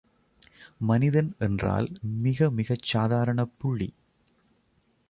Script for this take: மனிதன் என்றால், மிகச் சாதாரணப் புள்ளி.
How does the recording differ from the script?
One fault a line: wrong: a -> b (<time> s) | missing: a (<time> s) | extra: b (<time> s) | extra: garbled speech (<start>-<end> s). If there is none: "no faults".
extra: மிக (2.0 s)